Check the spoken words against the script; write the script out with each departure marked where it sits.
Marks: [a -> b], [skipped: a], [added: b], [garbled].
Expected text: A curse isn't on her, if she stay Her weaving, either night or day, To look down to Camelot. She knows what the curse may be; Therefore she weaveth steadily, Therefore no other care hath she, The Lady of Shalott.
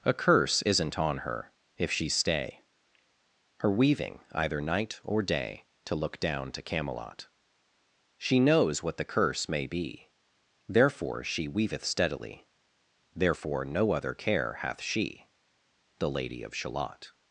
A curse isn't on her, if she stay Her weaving, either night or day, To look down to Camelot. She knows what the curse may be; Therefore she weaveth steadily, Therefore no other care hath she, The Lady of Shalott.